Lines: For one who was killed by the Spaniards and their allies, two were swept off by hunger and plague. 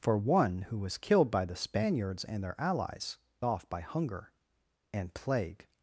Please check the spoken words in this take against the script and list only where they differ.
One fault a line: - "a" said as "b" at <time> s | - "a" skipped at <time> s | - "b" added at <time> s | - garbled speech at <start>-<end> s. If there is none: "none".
- "two were swept" skipped at 3.2 s